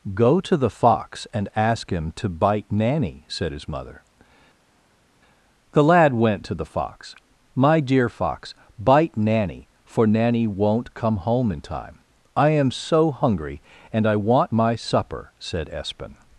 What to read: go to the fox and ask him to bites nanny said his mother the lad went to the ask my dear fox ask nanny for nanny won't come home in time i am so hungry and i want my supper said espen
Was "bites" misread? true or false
true